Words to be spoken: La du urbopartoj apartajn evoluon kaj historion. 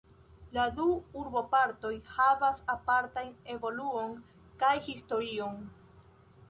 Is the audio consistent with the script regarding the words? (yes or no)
no